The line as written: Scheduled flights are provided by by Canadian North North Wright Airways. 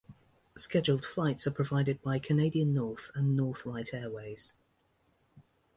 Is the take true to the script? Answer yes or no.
no